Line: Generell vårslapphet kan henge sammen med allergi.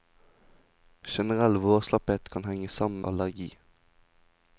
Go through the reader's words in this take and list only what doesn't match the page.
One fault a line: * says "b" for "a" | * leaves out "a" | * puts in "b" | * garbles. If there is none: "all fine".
* leaves out "med"